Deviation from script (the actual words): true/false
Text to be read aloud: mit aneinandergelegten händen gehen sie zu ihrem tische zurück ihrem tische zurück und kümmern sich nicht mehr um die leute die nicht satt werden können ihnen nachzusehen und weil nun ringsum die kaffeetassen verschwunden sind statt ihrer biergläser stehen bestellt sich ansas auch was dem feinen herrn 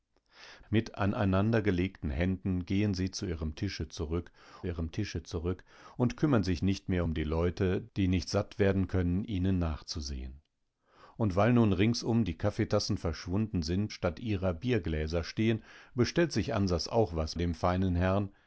false